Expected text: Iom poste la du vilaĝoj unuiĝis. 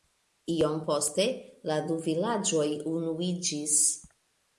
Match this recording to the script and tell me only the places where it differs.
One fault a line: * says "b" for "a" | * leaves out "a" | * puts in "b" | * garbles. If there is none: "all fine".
all fine